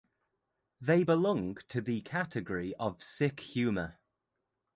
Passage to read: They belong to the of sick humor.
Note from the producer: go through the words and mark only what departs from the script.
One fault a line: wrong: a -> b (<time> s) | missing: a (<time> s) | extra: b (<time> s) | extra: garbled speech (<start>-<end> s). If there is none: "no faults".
extra: category (2.0 s)